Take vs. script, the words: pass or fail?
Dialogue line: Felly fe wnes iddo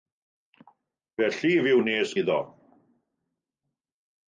pass